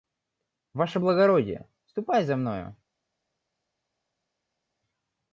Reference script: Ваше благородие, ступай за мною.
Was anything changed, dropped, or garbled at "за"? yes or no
no